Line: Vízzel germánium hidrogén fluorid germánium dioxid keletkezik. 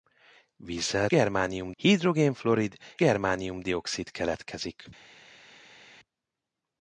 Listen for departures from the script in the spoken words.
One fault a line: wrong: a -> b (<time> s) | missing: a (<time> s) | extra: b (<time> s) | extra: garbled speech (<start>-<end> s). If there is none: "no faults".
no faults